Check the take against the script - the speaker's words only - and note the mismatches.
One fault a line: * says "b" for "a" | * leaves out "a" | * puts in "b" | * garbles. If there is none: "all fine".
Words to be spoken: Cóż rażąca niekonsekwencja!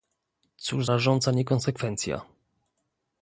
all fine